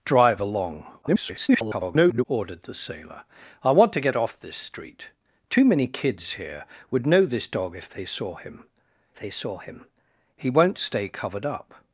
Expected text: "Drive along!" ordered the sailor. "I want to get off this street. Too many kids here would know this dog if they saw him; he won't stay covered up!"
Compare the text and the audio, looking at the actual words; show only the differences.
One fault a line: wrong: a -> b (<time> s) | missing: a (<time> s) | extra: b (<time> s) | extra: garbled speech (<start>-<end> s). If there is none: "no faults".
extra: garbled speech (1.0-2.3 s)
extra: they saw him (9.1 s)